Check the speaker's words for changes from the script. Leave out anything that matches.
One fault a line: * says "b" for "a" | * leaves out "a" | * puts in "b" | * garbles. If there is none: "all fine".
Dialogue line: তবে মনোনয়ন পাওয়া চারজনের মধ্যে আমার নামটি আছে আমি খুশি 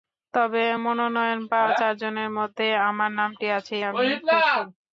all fine